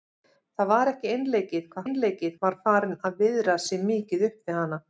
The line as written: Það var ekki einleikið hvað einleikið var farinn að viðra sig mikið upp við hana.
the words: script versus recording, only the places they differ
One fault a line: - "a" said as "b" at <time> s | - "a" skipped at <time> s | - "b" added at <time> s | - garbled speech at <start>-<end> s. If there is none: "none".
none